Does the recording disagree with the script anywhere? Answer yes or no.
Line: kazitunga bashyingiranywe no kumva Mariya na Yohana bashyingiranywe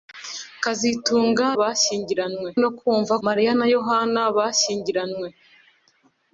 no